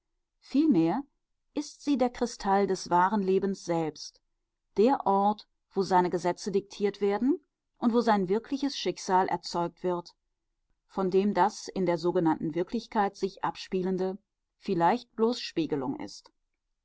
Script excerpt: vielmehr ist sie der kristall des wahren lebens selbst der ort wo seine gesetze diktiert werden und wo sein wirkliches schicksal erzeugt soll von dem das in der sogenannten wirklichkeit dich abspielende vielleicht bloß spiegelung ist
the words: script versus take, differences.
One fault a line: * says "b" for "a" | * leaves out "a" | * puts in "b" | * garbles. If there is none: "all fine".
* says "wird" for "soll"
* says "sich" for "dich"